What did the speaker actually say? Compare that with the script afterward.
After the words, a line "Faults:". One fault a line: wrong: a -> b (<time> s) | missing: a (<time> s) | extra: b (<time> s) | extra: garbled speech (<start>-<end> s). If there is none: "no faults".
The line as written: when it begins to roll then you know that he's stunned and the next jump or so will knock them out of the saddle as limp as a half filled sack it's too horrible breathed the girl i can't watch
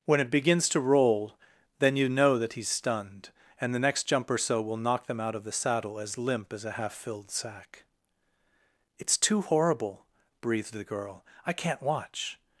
when it begins to roll then you know that he's stunned and the next jump or so will knock them out of the saddle as limp as a half filled sack it's too horrible breathed the girl i can't watch
Faults:
no faults